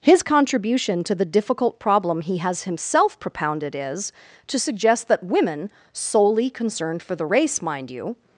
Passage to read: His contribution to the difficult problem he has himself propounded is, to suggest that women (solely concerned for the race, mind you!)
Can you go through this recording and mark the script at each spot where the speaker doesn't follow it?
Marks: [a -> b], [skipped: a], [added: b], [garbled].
His contribution to the difficult problem he has himself propounded is, to suggest that women (solely concerned for the race, mind you!)